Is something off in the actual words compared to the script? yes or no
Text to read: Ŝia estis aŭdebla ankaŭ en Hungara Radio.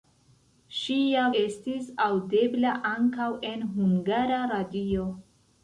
no